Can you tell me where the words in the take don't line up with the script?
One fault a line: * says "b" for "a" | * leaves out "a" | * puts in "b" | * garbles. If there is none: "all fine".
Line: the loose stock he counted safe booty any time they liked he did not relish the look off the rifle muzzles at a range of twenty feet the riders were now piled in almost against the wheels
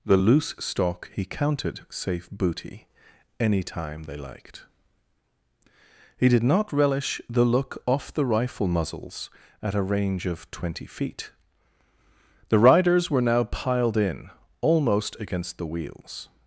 all fine